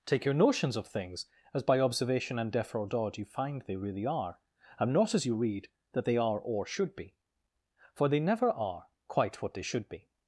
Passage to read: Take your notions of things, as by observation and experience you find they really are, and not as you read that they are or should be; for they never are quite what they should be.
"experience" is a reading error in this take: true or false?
true